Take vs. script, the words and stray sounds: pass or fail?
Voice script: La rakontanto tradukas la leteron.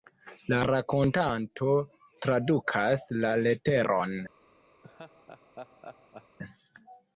fail